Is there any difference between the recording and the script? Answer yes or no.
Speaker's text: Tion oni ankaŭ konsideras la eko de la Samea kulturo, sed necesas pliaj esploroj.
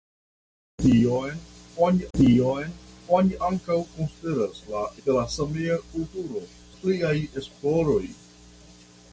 yes